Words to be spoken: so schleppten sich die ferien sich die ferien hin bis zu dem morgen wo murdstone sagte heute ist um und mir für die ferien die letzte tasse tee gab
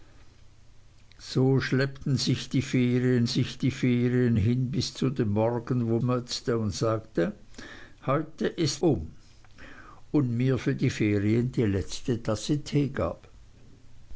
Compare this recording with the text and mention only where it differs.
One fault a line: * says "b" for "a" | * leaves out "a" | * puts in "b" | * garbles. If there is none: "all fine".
all fine